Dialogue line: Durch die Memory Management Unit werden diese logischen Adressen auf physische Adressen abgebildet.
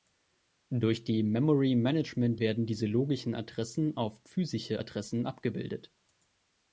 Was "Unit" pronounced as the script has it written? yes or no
no